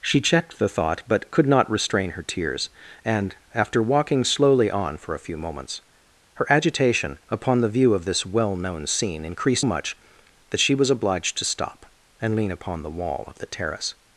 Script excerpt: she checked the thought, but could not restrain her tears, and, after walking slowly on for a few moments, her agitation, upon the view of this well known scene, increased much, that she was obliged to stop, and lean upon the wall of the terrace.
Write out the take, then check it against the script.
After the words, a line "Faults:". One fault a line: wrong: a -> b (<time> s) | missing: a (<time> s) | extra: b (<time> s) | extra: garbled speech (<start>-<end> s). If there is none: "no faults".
she checked the thought, but could not restrain her tears, and, after walking slowly on for a few moments, her agitation, upon the view of this well known scene, increased much, that she was obliged to stop, and lean upon the wall of the terrace.
Faults:
no faults